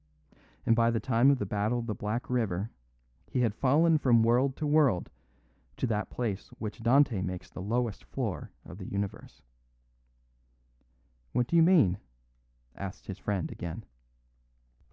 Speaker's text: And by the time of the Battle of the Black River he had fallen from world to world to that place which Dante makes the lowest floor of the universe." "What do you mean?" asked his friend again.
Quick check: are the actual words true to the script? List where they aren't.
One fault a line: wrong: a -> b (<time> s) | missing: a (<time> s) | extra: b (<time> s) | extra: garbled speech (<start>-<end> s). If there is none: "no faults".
no faults